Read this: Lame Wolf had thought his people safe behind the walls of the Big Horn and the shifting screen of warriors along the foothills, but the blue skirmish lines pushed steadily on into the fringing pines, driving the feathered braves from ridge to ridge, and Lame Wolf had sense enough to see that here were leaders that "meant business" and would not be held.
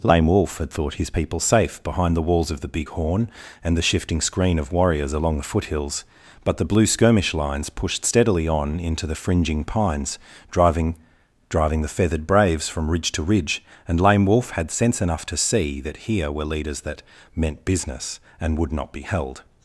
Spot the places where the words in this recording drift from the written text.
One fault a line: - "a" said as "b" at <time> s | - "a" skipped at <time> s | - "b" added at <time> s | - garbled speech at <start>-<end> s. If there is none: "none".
- "driving" added at 11.5 s